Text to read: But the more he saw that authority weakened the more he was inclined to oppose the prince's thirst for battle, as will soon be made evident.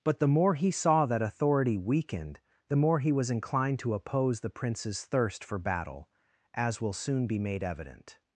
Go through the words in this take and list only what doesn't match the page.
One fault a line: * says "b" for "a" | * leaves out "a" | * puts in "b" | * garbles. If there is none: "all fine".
all fine